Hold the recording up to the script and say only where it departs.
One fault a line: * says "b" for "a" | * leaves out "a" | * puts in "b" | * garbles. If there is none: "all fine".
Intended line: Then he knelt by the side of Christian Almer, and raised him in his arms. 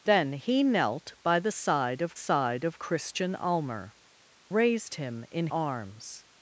* puts in "side of"
* leaves out "and"
* leaves out "his"